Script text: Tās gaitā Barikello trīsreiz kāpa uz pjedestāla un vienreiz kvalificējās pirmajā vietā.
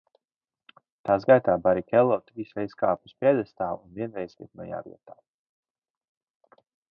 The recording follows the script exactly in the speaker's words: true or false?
false